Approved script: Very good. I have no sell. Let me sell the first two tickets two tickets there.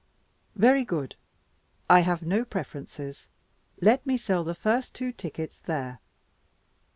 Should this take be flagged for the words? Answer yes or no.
yes